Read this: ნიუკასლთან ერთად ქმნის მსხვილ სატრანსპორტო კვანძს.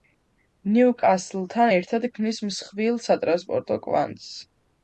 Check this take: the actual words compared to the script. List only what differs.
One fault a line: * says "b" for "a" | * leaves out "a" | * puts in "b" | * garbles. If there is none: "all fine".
all fine